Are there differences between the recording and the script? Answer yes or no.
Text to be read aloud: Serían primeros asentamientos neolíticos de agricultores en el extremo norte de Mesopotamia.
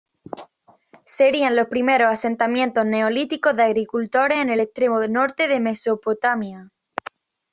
yes